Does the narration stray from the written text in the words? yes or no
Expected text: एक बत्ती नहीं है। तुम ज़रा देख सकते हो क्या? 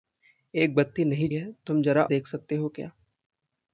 no